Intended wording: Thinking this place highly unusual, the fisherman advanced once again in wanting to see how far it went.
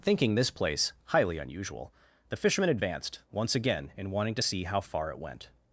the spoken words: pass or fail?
pass